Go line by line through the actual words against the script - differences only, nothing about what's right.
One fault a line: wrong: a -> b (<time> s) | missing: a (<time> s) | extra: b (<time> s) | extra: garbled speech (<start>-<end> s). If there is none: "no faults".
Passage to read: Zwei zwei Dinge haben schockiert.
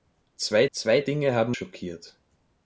no faults